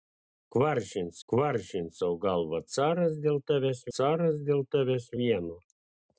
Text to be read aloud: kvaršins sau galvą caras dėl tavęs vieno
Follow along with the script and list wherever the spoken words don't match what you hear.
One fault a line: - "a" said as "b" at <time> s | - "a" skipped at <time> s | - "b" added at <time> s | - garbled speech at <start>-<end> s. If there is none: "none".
- "kvaršins" added at 1.3 s
- "caras dėl tavęs" added at 4.0 s